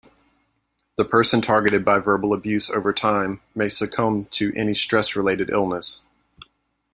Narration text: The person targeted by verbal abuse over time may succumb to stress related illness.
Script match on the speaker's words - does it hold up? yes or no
no